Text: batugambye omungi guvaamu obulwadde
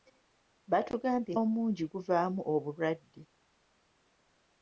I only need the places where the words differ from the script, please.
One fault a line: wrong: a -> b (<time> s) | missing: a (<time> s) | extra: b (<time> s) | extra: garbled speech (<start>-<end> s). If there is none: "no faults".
no faults